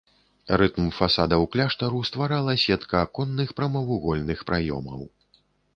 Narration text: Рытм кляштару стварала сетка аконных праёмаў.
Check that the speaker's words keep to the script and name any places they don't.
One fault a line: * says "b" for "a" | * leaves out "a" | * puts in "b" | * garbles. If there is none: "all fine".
* puts in "фасадаў"
* puts in "прамавугольных"